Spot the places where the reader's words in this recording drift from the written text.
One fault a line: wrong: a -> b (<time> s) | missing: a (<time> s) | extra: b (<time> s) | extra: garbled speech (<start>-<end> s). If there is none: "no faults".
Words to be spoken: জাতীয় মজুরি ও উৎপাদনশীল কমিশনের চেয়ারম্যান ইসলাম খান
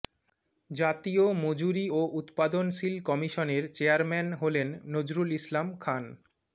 extra: হলেন নজরুল (4.4 s)